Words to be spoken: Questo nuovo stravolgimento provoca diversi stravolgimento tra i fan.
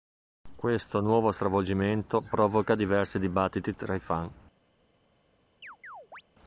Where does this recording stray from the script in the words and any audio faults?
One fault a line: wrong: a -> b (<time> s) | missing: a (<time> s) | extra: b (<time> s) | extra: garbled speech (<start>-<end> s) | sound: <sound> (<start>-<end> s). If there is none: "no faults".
wrong: stravolgimento -> dibattiti (3.2 s)
sound: chirp (5.6-6.2 s)